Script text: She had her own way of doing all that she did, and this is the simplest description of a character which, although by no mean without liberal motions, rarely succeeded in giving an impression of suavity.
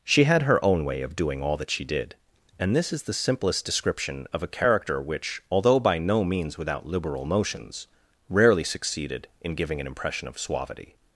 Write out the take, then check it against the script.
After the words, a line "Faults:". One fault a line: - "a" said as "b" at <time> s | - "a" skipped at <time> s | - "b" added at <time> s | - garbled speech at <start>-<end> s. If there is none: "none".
She had her own way of doing all that she did, and this is the simplest description of a character which, although by no means without liberal motions, rarely succeeded in giving an impression of suavity.
Faults:
- "mean" said as "means" at 6.2 s